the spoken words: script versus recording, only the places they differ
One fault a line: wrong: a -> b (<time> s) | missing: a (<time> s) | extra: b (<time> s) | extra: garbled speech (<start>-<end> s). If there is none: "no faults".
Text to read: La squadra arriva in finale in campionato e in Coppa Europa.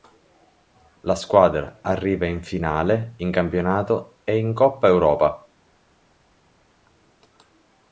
no faults